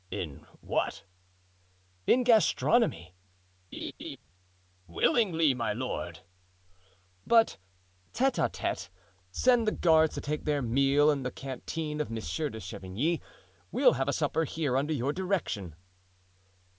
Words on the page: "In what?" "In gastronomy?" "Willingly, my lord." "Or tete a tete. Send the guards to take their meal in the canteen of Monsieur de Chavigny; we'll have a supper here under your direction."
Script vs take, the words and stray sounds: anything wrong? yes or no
yes